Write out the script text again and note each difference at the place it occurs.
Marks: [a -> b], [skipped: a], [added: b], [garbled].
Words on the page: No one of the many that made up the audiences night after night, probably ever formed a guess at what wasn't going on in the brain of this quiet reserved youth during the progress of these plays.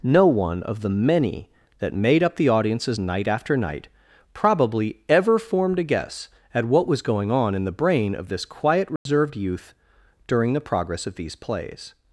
No one of the many that made up the audiences night after night, probably ever formed a guess at what [wasn't -> was] going on in the brain of this quiet reserved youth during the progress of these plays.